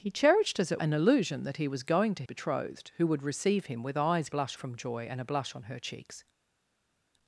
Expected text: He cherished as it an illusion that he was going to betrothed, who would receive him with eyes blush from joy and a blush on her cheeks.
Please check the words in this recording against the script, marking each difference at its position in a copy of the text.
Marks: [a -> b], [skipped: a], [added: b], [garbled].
He cherished as it an illusion that he was going to betrothed, who would receive him with eyes blush from joy and a blush on her cheeks.